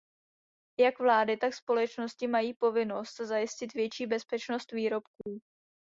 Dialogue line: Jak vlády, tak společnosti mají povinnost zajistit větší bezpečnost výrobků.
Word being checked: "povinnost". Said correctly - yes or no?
yes